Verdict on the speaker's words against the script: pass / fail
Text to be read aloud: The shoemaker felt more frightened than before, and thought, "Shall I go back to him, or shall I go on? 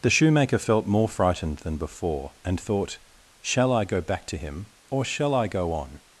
pass